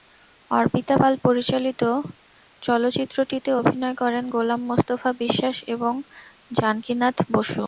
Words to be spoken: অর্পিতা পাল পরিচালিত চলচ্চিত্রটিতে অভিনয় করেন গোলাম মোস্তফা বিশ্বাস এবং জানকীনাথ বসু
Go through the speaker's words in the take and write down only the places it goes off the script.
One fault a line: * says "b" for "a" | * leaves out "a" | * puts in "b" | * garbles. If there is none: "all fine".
all fine